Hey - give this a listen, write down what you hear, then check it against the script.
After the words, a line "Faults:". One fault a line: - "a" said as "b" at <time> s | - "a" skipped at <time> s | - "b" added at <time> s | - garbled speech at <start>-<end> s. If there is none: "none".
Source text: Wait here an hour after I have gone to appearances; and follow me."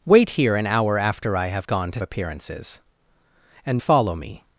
Wait here an hour after I have gone to appearances; and follow me."
Faults:
none